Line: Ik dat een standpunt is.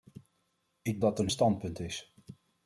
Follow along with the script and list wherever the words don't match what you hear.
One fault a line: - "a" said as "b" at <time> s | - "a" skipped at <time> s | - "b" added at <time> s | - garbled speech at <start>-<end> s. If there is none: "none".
none